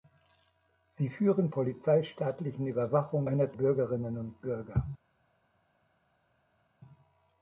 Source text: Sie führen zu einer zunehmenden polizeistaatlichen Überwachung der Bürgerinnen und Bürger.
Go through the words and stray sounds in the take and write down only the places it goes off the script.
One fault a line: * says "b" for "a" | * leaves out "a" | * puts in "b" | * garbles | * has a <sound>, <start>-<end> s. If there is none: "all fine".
* leaves out "zu einer zunehmenden"
* says "einer" for "der"